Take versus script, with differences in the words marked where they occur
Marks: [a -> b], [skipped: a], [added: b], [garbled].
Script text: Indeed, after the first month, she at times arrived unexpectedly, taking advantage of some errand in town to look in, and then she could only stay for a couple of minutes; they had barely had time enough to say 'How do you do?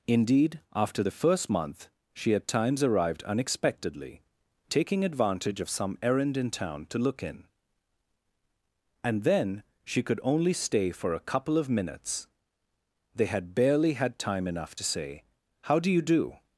Indeed, after the first month, she at times arrived unexpectedly, taking advantage of some errand in town to look in, and then she could only stay for a couple of minutes; they had barely had time enough to say 'How do you do?